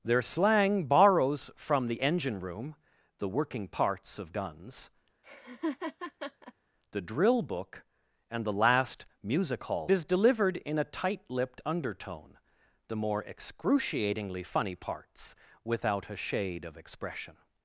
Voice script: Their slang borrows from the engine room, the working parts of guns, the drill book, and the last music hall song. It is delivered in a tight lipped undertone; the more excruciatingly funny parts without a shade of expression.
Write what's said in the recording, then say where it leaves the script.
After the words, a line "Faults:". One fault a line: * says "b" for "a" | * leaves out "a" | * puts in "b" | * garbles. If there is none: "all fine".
Their slang borrows from the engine room, the working parts of guns, the drill book, and the last music hall is delivered in a tight lipped undertone; the more excruciatingly funny parts without a shade of expression.
Faults:
* leaves out "song It"